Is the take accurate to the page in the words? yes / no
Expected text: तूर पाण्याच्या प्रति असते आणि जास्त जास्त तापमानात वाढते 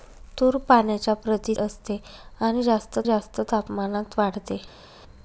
yes